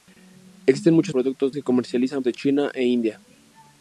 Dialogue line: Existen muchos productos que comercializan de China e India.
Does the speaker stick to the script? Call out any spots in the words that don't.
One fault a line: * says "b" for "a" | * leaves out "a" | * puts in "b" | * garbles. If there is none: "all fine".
all fine